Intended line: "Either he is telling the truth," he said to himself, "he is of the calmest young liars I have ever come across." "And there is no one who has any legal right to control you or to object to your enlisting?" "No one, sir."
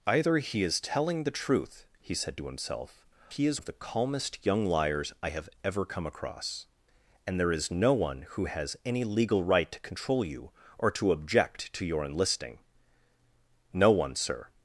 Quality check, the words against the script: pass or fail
pass